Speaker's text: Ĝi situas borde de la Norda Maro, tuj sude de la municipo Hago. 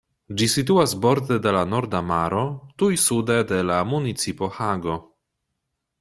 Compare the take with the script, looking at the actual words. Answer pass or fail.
pass